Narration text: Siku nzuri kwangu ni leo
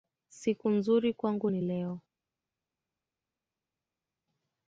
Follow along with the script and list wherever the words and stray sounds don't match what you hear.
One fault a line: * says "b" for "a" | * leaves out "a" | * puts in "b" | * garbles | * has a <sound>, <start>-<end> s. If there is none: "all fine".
all fine